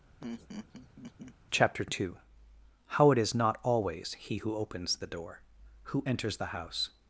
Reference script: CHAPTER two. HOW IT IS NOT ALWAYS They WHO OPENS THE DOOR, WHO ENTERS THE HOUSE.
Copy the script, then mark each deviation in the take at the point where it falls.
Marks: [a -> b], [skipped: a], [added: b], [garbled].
CHAPTER two. HOW IT IS NOT ALWAYS [They -> HE] WHO OPENS THE DOOR, WHO ENTERS THE HOUSE.